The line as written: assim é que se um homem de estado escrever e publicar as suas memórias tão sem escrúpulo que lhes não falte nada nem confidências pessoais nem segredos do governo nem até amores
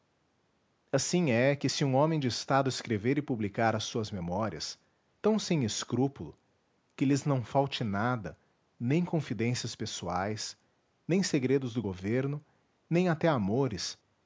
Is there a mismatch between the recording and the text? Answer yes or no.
no